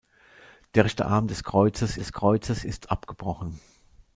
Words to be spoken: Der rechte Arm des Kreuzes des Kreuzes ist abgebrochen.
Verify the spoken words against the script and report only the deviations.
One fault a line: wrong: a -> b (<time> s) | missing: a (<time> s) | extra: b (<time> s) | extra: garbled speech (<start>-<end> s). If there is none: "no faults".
no faults